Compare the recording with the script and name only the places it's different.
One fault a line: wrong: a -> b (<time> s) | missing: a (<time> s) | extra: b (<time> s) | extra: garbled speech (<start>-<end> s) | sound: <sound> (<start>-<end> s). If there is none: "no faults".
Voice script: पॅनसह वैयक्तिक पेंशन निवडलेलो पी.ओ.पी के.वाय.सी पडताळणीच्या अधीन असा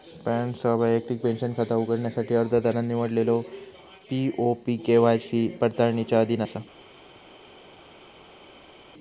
extra: खाता उघडण्यासाठी अर्जदारान (1.5 s)